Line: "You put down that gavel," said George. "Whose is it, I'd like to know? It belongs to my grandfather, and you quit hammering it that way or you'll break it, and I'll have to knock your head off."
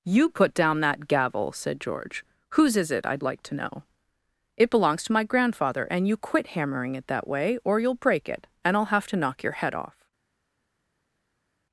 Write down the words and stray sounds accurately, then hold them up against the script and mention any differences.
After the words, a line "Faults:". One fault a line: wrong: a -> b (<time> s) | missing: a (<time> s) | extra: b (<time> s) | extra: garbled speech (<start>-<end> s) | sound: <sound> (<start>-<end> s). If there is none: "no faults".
"You put down that gavel," said George. "Whose is it, I'd like to know? It belongs to my grandfather, and you quit hammering it that way or you'll break it, and I'll have to knock your head off."
Faults:
no faults